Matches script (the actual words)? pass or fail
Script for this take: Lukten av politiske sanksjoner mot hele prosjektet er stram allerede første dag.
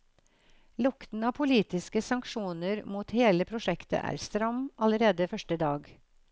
pass